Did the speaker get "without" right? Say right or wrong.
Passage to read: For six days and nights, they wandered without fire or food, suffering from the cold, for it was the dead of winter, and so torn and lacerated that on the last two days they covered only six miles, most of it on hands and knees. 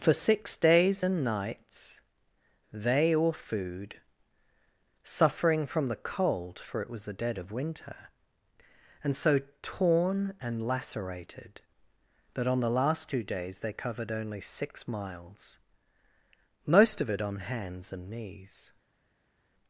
wrong